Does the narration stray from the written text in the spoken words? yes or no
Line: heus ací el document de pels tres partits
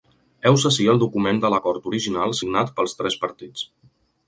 yes